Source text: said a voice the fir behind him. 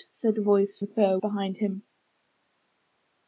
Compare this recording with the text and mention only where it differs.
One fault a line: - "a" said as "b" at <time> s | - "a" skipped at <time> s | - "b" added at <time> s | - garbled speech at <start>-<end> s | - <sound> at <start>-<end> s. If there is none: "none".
none